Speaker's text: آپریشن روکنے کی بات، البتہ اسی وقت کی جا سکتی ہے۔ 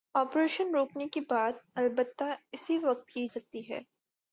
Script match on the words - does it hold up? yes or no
no